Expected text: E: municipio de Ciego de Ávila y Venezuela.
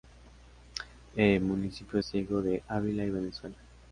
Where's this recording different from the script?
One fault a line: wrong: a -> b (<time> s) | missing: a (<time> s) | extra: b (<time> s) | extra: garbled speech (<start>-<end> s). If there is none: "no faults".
missing: de (2.0 s)